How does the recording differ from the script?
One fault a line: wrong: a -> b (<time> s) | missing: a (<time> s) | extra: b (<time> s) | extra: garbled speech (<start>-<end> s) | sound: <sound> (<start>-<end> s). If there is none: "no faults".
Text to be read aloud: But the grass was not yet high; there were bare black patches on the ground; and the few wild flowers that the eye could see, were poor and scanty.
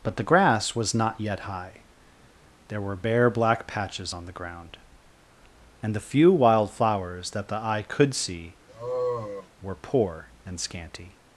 sound: sigh (8.7-9.5 s)